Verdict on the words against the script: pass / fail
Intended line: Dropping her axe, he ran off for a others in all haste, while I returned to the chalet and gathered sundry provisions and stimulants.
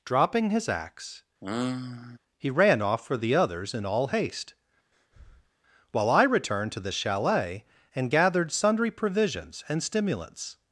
fail